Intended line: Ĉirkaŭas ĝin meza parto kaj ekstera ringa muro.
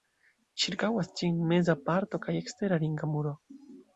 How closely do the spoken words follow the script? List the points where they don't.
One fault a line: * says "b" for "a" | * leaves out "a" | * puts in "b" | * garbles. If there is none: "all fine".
all fine